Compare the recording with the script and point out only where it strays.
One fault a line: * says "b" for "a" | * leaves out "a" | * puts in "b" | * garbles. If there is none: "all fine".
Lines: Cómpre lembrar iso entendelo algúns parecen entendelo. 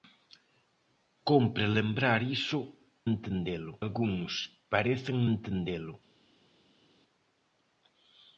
all fine